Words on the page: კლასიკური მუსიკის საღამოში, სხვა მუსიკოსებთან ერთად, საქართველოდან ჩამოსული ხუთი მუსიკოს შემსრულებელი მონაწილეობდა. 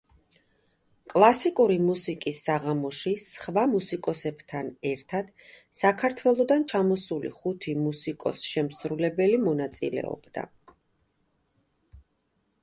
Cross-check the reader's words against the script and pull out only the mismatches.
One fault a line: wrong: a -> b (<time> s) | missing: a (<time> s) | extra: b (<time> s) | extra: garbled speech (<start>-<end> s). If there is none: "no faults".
no faults